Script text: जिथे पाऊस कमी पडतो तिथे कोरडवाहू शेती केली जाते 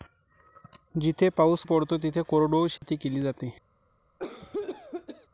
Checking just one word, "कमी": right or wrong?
wrong